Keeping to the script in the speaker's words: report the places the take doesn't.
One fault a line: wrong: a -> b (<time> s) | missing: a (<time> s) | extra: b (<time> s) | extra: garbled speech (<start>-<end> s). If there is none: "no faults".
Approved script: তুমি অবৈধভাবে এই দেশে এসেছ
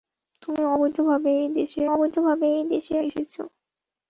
extra: অবৈধভাবে এই দেশে (1.9 s)